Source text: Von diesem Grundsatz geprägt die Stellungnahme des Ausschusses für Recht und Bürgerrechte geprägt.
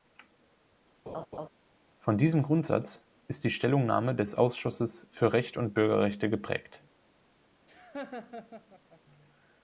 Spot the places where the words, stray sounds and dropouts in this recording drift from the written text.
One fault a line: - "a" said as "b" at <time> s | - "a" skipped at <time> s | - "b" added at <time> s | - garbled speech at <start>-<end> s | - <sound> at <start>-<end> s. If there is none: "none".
- laugh at 1.1-1.5 s
- "geprägt" said as "ist" at 3.3 s
- laugh at 7.7-9.0 s